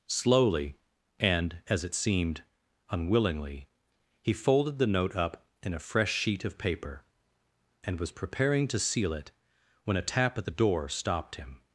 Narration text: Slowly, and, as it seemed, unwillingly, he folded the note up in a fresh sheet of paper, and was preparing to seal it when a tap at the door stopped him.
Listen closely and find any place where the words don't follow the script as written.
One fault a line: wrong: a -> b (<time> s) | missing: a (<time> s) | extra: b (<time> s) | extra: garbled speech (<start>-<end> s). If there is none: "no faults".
no faults